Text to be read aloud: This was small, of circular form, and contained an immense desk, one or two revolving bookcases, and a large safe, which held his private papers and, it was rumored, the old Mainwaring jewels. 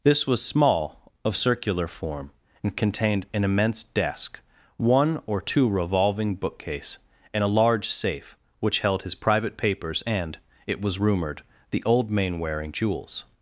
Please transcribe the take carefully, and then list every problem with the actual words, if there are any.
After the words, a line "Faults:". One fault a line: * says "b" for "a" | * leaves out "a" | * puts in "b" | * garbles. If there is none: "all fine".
This was small, of circular form, and contained an immense desk, one or two revolving bookcase, and a large safe, which held his private papers and, it was rumored, the old Mainwaring jewels.
Faults:
* says "bookcase" for "bookcases"